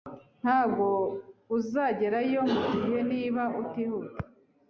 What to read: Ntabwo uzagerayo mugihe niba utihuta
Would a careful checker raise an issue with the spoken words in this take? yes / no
no